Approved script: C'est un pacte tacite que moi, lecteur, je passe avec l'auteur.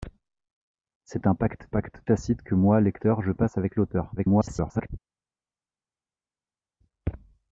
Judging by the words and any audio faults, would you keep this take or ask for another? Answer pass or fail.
fail